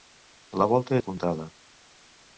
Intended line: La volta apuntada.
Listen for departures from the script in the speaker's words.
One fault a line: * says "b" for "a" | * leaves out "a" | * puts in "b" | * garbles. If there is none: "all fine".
all fine